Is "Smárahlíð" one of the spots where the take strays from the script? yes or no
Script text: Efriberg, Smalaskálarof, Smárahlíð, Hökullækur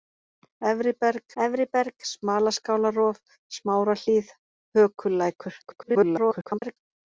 no